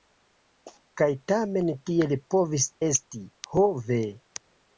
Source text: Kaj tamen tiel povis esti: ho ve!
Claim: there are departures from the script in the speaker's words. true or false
false